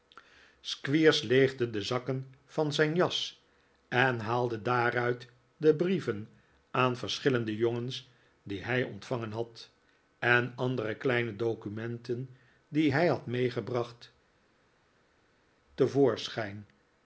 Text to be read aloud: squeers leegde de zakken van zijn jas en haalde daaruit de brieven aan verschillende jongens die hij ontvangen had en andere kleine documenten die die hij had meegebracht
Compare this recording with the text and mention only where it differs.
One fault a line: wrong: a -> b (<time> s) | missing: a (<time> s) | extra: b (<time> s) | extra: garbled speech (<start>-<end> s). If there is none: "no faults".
missing: die (12.9 s)